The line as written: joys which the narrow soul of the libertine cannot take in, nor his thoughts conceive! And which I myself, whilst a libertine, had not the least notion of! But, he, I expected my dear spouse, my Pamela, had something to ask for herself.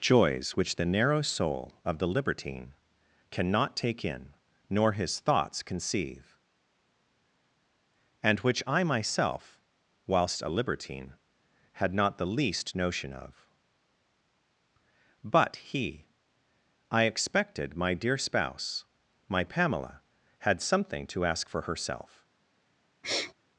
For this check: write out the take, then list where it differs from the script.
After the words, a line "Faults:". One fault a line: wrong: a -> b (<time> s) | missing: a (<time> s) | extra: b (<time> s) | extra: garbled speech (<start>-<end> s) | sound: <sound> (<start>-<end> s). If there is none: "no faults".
joys which the narrow soul of the libertine cannot take in, nor his thoughts conceive! And which I myself, whilst a libertine, had not the least notion of! But, he, I expected my dear spouse, my Pamela, had something to ask for herself.
Faults:
sound: sniff (23.0-23.3 s)